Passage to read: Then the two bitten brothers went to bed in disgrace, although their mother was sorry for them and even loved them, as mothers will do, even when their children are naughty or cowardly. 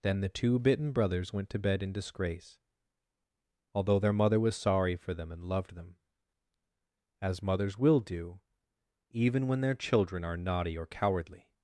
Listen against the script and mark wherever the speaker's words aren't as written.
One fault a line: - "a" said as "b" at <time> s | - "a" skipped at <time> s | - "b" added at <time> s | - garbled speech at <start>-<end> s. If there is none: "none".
- "even" skipped at 5.4 s